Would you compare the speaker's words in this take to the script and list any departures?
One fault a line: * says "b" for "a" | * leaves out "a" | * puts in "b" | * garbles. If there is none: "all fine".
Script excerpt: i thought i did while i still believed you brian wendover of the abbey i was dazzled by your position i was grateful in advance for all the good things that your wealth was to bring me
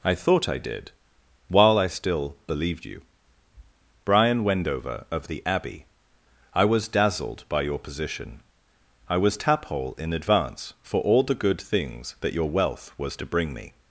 * says "taphole" for "grateful"